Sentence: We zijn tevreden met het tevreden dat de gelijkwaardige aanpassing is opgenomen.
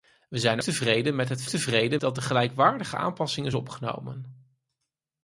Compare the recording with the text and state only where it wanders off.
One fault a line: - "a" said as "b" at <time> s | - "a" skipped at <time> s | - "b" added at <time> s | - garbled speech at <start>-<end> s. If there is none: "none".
none